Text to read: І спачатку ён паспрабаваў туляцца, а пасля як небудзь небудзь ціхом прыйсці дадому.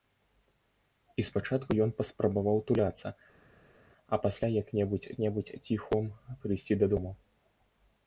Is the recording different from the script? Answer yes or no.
no